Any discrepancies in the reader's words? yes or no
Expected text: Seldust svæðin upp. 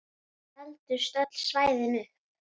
yes